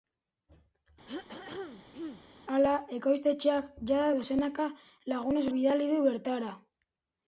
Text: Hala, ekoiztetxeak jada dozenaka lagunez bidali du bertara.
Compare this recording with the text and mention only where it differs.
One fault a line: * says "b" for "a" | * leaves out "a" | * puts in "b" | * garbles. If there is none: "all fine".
all fine